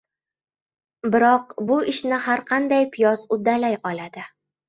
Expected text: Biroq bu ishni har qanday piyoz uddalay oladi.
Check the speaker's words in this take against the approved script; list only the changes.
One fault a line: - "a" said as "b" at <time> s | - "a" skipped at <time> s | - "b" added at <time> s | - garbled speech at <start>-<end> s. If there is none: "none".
none